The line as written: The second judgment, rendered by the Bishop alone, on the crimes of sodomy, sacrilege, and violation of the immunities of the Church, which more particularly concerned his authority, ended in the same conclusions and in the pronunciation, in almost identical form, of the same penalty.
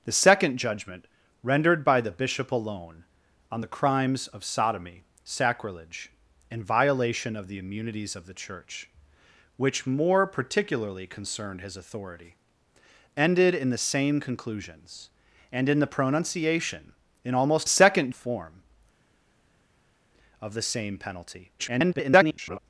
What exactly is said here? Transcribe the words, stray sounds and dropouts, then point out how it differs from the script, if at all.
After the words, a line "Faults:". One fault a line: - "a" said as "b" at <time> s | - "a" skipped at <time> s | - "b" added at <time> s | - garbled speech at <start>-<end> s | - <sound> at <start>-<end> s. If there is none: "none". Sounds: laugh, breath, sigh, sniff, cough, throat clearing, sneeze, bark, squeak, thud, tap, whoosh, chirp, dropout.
The second judgment, rendered by the Bishop alone, on the crimes of sodomy, sacrilege, and violation of the immunities of the Church, which more particularly concerned his authority, ended in the same conclusions and in the pronunciation, in almost second form, of the same penalty. [garbled]
Faults:
- "identical" said as "second" at 17.7 s
- garbled speech at 21.6-22.6 s